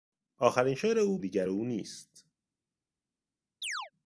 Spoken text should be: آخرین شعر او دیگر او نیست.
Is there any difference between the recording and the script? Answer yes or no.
no